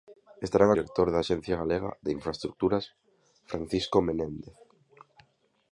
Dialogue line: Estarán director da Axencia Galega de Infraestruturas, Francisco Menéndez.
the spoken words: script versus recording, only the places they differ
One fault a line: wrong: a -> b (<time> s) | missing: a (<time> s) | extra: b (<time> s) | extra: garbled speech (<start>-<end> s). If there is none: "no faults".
no faults